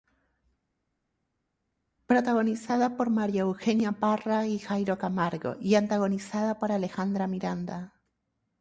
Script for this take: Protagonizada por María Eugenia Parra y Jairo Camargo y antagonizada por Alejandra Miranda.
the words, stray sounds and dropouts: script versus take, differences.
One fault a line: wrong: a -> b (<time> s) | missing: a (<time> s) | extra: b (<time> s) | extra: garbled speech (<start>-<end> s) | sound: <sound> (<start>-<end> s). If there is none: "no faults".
no faults